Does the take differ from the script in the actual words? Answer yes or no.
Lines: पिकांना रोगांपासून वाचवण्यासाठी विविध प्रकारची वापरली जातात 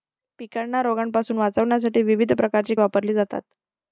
no